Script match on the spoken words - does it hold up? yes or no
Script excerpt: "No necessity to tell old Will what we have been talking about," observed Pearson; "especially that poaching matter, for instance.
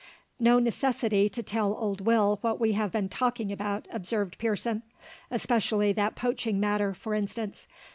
yes